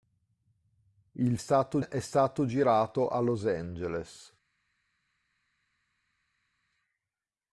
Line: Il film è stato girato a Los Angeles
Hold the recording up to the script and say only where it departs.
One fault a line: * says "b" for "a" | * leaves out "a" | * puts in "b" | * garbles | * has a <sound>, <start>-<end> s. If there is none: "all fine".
* says "stato" for "film"